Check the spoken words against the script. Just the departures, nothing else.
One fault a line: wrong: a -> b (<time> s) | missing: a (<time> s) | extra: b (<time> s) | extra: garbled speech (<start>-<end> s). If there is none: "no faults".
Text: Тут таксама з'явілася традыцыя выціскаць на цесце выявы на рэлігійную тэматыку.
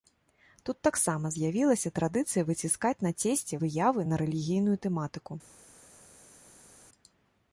no faults